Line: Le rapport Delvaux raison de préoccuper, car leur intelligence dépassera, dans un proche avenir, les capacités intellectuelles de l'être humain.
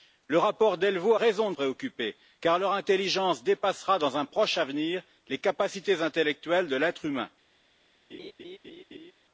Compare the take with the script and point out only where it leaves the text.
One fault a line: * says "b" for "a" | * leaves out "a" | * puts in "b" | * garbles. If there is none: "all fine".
all fine